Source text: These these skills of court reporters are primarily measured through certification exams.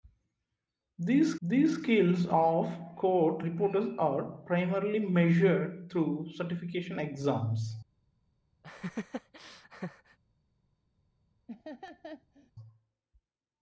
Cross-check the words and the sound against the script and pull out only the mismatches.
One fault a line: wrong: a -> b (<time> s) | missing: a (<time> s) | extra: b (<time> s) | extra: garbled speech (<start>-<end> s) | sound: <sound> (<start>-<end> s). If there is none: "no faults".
sound: laugh (8.6-10.2 s)
sound: laugh (11.5-12.5 s)